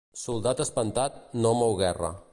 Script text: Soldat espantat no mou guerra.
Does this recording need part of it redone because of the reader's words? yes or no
no